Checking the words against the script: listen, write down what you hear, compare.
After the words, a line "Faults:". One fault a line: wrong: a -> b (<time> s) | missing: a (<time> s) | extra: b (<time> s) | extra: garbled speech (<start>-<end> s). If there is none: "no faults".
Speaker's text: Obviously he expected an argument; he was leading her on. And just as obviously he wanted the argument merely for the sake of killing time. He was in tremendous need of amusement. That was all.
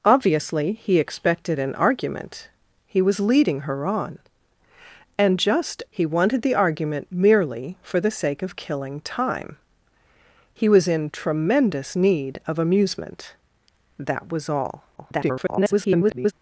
Obviously he expected an argument; he was leading her on. And just he wanted the argument merely for the sake of killing time. He was in tremendous need of amusement. That was all. [garbled]
Faults:
missing: as obviously (5.8 s)
extra: garbled speech (15.0-16.3 s)